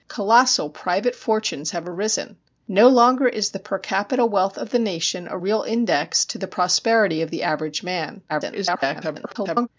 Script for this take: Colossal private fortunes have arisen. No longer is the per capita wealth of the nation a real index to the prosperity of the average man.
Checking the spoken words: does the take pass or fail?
fail